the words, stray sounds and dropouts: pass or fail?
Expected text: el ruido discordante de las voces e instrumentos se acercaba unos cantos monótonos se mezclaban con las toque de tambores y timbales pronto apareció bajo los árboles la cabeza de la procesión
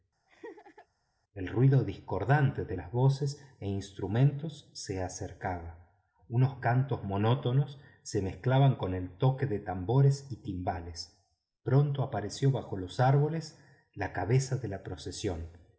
fail